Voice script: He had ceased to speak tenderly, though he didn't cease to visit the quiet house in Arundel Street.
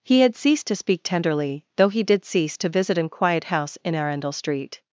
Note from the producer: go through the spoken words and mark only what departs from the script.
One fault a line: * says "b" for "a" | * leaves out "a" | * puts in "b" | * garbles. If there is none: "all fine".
* says "did" for "didn't"
* says "an" for "the"